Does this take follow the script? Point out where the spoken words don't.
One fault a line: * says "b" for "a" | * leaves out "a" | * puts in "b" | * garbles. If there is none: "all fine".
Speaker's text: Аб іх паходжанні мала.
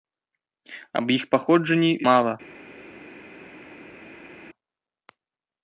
all fine